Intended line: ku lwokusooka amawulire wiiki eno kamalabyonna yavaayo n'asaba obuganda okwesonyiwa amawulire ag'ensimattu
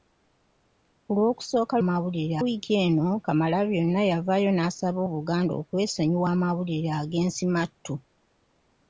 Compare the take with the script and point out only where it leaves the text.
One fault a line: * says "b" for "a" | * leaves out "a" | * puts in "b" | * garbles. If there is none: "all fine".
all fine